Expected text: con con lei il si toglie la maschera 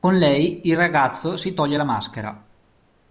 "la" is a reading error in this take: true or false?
false